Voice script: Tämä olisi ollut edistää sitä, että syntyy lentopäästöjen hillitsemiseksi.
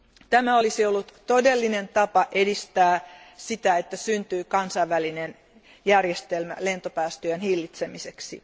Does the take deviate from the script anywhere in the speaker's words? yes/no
yes